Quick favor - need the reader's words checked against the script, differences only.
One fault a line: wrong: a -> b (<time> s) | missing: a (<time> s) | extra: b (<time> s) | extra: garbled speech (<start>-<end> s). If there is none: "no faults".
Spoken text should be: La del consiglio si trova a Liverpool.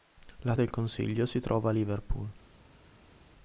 no faults